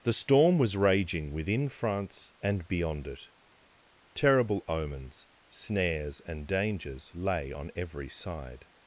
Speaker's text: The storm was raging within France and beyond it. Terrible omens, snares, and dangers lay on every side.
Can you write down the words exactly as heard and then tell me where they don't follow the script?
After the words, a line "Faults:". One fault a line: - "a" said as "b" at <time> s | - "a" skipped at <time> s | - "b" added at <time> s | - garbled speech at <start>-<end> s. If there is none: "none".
The storm was raging within France and beyond it. Terrible omens, snares, and dangers lay on every side.
Faults:
none